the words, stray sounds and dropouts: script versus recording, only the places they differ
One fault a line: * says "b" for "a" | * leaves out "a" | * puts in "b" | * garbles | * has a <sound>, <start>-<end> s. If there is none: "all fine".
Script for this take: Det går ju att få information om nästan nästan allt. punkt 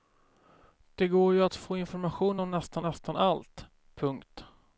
all fine